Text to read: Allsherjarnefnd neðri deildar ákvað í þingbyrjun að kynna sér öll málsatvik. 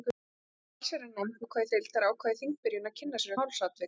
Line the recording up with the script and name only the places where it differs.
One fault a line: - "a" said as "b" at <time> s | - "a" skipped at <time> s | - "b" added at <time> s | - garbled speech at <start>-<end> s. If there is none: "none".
- "neðri" said as "ákvað" at 1.4 s
- "öll" skipped at 3.4 s